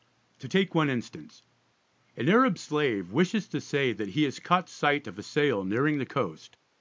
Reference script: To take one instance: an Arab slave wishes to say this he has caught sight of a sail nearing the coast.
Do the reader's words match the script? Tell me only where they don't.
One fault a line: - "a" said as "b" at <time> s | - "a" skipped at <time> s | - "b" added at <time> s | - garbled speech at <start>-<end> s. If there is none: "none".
- "this" said as "that" at 3.9 s